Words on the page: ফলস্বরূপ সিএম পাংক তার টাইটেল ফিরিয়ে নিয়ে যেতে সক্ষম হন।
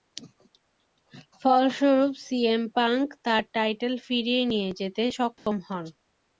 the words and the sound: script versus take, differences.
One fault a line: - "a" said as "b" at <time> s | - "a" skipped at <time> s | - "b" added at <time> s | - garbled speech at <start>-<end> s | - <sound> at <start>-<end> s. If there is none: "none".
- dropout at 5.4-5.5 s